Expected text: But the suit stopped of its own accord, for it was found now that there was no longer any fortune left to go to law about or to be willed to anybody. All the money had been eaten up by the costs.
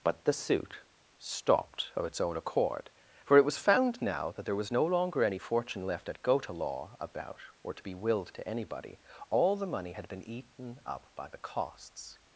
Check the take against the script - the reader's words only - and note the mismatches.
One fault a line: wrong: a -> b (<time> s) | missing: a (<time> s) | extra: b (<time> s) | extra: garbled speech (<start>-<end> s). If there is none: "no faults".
wrong: to -> at (6.1 s)